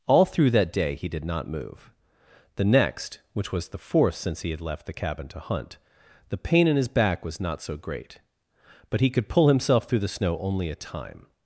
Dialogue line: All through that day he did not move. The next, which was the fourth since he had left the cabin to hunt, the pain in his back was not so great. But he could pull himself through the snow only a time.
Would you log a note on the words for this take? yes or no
no